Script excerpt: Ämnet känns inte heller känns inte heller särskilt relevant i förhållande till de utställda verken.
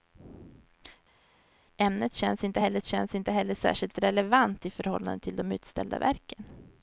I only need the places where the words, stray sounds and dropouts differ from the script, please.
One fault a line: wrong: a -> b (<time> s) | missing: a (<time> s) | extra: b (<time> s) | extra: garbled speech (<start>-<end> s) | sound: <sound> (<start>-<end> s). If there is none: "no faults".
no faults